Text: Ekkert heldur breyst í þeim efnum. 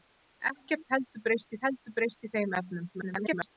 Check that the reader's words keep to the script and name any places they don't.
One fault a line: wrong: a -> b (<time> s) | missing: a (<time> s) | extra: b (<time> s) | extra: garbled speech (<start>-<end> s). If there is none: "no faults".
extra: heldur breyst (1.7 s)
extra: garbled speech (2.9-3.6 s)